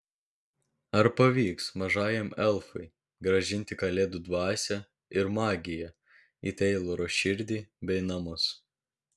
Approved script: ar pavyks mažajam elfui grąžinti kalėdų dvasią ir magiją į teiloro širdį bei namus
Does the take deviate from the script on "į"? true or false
false